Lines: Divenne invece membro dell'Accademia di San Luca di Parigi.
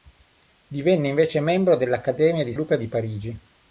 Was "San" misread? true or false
true